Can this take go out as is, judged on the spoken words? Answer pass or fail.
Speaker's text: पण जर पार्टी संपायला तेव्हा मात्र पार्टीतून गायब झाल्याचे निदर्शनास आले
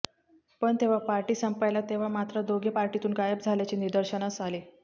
fail